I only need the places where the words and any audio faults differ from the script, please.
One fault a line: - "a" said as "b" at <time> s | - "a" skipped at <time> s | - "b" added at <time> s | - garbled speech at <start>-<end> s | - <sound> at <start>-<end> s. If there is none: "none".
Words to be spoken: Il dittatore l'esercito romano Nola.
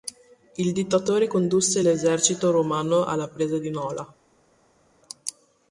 - "condusse" added at 1.3 s
- "alla presa di" added at 3.0 s